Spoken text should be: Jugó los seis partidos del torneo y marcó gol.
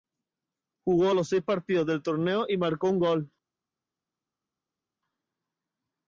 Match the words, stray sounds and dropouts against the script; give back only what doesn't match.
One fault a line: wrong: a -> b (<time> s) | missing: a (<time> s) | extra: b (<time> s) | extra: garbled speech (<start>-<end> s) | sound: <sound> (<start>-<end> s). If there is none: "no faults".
extra: un (2.9 s)